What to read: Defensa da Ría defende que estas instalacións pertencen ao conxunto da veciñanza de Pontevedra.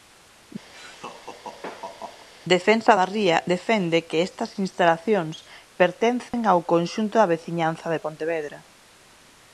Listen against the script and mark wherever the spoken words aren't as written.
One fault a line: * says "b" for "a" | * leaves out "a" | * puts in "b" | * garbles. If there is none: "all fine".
all fine